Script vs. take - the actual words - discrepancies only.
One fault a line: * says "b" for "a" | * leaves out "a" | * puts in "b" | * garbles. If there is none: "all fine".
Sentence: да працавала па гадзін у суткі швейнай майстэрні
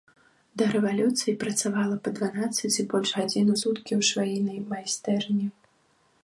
* puts in "рэвалюцыі"
* puts in "дванаццаць і больш"
* puts in "ў"